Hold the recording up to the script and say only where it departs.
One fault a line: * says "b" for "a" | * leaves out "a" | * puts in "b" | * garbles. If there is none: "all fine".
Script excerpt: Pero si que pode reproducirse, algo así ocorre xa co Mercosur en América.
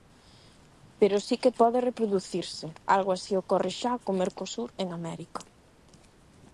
all fine